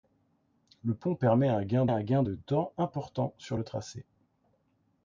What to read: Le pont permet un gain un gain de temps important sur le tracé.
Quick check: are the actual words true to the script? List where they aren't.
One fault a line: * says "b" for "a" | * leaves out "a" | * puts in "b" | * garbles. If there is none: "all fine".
all fine